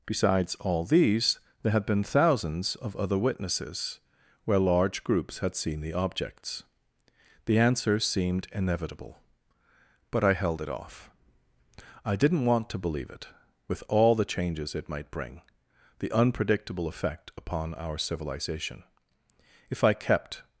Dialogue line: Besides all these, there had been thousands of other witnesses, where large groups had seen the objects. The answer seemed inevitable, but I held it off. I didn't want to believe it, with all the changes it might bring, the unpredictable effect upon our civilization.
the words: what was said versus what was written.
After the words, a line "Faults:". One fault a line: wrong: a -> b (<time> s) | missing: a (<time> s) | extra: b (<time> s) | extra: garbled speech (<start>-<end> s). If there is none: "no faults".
Besides all these, there had been thousands of other witnesses, where large groups had seen the objects. The answer seemed inevitable, but I held it off. I didn't want to believe it, with all the changes it might bring, the unpredictable effect upon our civilization. If I kept
Faults:
extra: If I kept (19.7 s)